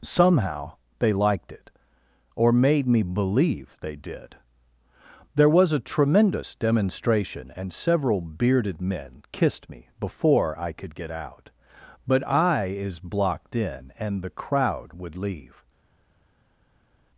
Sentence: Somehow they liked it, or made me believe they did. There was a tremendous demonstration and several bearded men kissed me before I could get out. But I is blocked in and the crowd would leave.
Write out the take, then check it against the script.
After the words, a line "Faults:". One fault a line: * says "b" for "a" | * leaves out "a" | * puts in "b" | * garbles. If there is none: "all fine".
Somehow they liked it, or made me believe they did. There was a tremendous demonstration and several bearded men kissed me before I could get out. But I is blocked in and the crowd would leave.
Faults:
all fine